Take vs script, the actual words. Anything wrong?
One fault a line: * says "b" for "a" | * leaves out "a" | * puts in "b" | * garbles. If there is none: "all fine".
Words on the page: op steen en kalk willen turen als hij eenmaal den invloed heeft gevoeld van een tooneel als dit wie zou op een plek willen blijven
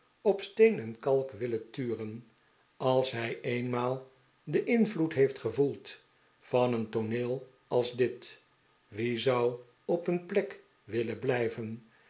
all fine